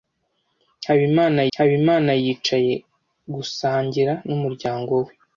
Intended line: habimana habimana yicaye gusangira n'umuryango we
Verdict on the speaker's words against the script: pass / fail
pass